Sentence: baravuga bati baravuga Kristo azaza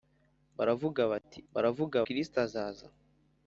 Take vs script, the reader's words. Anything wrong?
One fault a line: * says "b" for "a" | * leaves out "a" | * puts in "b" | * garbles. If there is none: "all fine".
all fine